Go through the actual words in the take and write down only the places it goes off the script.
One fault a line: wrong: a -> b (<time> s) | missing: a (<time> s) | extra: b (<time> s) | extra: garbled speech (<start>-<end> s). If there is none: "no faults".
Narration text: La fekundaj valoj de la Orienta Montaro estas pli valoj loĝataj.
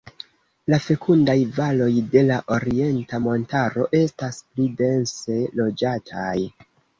wrong: valoj -> dense (4.9 s)